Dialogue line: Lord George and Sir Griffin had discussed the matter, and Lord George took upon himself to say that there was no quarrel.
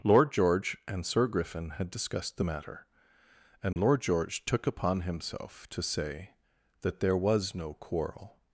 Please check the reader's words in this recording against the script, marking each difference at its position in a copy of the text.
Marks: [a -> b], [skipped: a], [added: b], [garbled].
Lord George and Sir Griffin had discussed the matter, and Lord George took upon himself to say that there was no quarrel.